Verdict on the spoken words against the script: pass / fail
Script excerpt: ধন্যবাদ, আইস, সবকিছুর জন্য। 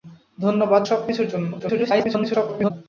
fail